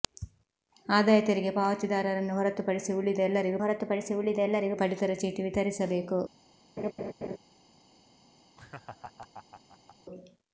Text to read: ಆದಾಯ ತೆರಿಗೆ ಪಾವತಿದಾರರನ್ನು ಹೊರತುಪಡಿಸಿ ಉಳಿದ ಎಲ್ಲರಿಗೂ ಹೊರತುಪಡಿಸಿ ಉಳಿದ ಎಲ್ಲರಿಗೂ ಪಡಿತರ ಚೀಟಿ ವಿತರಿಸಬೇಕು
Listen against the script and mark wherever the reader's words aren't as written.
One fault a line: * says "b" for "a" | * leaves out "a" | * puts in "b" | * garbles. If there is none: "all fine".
all fine